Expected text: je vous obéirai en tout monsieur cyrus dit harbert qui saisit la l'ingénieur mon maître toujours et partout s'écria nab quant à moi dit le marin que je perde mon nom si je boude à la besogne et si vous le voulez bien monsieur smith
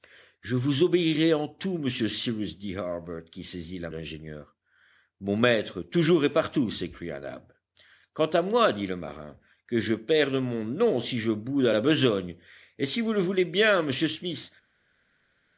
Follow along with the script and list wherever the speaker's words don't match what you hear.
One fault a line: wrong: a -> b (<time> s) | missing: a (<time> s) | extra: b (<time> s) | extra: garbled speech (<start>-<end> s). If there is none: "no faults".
no faults